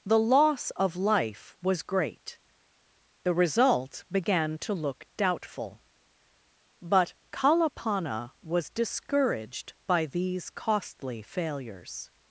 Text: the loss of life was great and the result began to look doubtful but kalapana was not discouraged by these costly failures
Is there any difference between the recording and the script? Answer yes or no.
yes